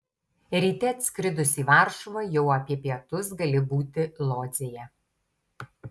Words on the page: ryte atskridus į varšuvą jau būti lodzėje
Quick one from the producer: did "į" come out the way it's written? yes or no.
yes